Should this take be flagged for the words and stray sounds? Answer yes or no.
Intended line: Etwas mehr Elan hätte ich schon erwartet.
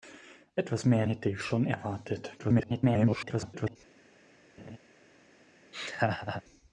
yes